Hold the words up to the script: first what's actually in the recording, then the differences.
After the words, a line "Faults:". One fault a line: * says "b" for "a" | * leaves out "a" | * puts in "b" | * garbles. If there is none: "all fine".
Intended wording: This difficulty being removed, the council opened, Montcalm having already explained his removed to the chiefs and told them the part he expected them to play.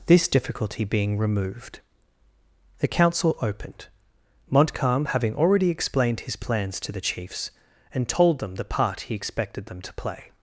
This difficulty being removed, the council opened, Montcalm having already explained his plans to the chiefs and told them the part he expected them to play.
Faults:
* says "plans" for "removed"